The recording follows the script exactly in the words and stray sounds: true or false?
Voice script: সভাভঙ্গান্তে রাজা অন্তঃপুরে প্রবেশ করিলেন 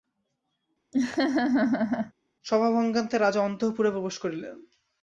false